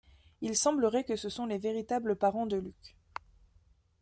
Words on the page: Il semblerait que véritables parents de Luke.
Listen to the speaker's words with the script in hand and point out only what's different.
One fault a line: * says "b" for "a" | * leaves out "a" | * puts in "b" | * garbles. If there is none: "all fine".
* puts in "ce sont les"